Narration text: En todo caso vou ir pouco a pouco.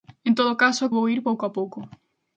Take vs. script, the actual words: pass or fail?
pass